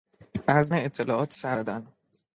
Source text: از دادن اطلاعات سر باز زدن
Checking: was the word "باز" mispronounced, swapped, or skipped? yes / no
yes